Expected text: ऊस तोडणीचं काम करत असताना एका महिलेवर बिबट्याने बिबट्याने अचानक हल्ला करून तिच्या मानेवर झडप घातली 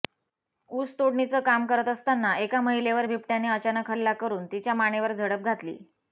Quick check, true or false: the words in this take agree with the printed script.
false